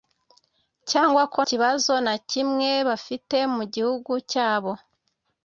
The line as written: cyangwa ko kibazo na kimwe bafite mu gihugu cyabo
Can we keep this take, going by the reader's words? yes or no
yes